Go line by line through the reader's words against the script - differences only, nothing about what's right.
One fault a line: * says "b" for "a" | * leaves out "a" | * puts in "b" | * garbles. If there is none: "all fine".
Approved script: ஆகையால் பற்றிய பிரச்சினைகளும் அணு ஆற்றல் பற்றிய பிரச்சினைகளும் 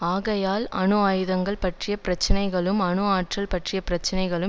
* puts in "அணு ஆயுதங்கள்"